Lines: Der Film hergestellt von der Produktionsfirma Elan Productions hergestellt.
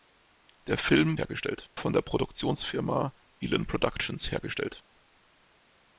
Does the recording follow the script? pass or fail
pass